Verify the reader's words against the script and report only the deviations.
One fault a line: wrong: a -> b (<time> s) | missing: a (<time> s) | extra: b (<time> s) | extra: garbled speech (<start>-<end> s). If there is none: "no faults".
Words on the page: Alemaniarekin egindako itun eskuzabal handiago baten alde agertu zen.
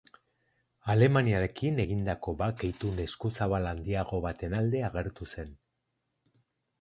extra: bake (2.4 s)